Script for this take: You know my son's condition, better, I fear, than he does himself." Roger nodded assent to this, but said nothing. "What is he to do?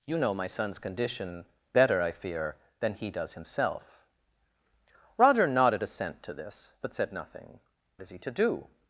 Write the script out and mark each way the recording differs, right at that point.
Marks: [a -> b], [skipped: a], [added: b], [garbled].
You know my son's condition, better, I fear, than he does himself." Roger nodded assent to this, but said nothing. [skipped: "What] is he to do?